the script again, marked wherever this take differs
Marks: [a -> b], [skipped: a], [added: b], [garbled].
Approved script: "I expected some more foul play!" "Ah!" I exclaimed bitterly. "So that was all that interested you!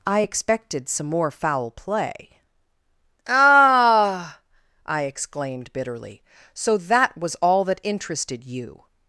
"I expected some more foul play!" "Ah!" I exclaimed bitterly. "So that was all that interested you!